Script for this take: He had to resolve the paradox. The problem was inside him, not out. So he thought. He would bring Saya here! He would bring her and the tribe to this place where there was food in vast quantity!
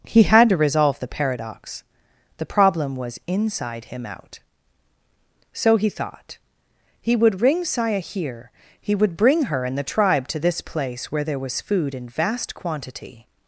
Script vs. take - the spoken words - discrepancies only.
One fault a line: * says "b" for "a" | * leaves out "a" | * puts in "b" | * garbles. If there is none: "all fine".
* leaves out "not"
* says "ring" for "bring"